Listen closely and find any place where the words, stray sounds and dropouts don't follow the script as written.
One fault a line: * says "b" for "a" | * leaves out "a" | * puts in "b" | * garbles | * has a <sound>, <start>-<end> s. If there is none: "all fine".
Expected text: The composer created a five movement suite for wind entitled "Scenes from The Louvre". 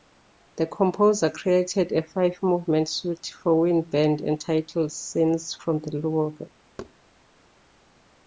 * puts in "band"
* has a thud, 6.8-6.9 s